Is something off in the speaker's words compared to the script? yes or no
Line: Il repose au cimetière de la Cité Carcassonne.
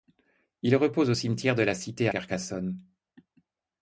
no